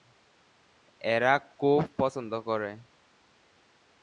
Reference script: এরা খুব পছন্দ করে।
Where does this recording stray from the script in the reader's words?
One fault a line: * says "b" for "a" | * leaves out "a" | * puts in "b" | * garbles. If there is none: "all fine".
all fine